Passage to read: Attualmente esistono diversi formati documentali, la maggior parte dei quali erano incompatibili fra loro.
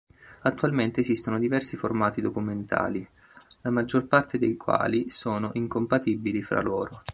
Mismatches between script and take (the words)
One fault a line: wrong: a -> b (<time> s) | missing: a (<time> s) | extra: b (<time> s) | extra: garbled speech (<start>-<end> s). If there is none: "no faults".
wrong: erano -> sono (5.1 s)